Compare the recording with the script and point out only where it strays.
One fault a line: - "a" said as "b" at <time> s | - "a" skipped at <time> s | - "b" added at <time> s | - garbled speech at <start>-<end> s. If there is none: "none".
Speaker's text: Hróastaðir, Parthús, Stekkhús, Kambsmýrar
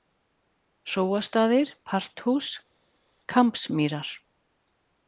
- "Stekkhús" skipped at 2.5 s